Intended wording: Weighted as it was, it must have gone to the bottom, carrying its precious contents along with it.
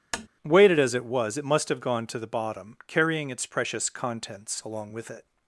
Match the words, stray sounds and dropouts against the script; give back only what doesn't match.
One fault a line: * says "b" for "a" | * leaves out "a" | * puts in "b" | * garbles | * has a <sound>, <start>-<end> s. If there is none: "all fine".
* has a tap, 0.1-0.3 s